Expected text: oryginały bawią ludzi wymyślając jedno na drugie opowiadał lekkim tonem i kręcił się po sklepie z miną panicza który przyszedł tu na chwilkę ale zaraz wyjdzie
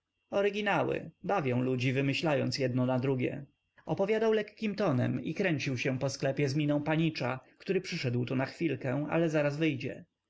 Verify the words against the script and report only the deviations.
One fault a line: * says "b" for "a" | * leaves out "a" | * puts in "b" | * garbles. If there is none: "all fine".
all fine